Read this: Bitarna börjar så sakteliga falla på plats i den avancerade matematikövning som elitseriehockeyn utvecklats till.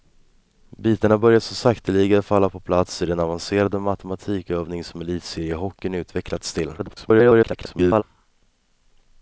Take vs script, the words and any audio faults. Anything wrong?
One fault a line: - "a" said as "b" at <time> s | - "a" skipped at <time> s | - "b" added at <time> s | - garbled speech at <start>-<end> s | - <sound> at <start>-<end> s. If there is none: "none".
- garbled speech at 6.8-8.0 s